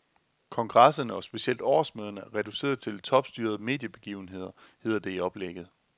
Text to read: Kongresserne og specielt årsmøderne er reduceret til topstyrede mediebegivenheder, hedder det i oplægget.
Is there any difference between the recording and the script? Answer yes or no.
no